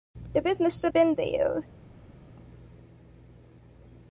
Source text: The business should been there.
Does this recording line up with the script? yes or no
yes